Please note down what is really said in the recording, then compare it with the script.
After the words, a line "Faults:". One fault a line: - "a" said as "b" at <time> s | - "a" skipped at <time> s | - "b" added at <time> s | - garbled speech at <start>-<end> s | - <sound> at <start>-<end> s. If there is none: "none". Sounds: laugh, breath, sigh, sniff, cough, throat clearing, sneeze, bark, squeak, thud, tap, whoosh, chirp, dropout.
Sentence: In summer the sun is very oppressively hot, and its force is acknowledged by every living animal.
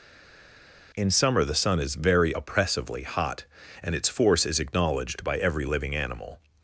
In summer the sun is very oppressively hot, and its force is acknowledged by every living animal.
Faults:
none